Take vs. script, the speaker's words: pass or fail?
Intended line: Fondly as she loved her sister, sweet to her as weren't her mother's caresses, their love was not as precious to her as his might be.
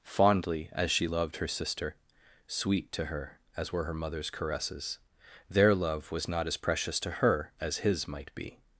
fail